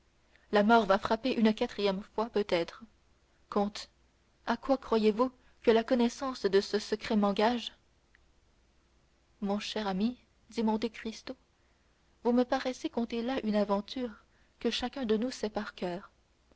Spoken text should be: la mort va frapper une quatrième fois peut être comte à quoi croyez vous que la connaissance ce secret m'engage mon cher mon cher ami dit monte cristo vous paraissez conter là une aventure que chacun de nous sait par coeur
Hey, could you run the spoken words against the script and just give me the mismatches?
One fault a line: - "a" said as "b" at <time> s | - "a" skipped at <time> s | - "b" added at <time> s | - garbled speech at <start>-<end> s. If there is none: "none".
- "de" added at 6.4 s
- "mon cher" skipped at 9.9 s
- "me" added at 12.3 s